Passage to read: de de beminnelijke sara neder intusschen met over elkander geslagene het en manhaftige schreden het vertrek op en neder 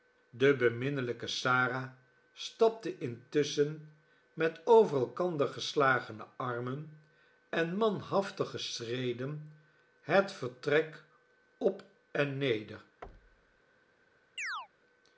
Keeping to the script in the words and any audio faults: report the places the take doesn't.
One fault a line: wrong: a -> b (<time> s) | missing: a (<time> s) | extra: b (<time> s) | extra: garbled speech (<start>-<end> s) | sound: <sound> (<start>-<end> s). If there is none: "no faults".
missing: de (0.6 s)
wrong: neder -> stapte (2.3 s)
wrong: het -> armen (6.3 s)
sound: thud (13.0-13.6 s)
sound: chirp (14.4-14.7 s)